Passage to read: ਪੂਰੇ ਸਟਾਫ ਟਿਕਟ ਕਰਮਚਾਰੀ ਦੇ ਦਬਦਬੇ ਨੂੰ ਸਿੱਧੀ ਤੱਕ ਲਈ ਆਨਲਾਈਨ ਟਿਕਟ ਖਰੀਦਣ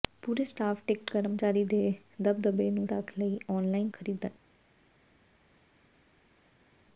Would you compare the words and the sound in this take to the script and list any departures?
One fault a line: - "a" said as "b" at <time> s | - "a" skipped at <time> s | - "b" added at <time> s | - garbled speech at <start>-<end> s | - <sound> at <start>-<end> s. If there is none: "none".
- "ਸਿੱਧੀ" skipped at 2.9 s
- "ਟਿਕਟ" skipped at 3.9 s